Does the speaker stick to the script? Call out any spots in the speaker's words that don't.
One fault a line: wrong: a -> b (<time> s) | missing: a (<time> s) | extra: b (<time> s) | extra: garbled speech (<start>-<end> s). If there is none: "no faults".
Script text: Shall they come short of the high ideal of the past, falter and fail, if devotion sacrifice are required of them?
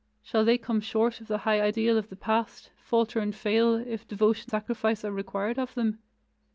no faults